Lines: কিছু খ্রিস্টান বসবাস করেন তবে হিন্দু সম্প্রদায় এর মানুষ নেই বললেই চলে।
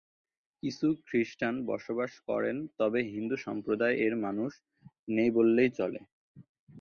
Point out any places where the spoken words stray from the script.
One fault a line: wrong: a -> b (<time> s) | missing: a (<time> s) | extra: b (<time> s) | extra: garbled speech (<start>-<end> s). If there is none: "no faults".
no faults